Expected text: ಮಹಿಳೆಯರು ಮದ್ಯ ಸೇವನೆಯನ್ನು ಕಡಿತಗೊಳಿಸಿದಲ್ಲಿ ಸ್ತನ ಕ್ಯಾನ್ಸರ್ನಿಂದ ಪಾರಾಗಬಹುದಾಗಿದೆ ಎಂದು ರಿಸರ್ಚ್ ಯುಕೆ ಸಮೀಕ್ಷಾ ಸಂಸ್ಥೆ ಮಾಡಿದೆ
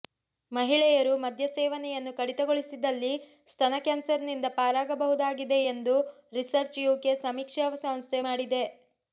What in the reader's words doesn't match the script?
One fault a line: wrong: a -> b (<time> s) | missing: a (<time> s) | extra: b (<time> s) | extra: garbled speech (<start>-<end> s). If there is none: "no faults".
no faults